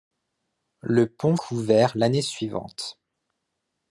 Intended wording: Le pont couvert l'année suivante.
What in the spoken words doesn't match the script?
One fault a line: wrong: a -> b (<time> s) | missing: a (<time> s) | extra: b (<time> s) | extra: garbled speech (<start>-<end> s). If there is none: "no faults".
no faults